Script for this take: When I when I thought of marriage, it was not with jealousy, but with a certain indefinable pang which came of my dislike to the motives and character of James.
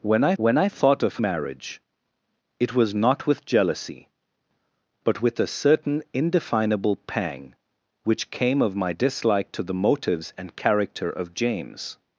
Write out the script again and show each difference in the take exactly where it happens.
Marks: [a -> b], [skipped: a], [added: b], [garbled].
When I when I thought of marriage, it was not with jealousy, but with a certain indefinable pang which came of my dislike to the motives and character of James.